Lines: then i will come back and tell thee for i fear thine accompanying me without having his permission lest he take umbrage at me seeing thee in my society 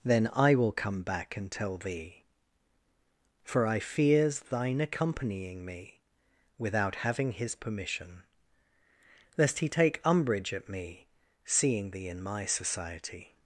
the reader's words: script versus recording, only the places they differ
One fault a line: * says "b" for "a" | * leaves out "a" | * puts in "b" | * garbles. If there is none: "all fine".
* says "fears" for "fear"